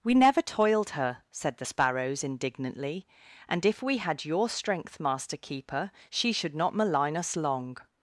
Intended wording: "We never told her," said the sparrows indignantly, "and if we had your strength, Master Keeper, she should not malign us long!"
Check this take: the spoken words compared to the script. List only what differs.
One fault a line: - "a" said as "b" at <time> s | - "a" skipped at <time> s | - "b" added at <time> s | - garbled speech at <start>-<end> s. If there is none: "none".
- "told" said as "toiled" at 0.4 s